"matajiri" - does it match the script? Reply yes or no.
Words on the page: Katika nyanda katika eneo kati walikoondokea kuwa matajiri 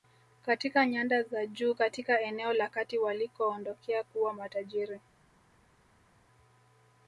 yes